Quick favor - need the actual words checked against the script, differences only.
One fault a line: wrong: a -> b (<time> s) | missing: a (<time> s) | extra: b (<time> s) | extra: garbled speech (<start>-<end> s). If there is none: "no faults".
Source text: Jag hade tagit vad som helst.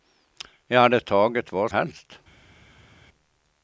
missing: som (1.7 s)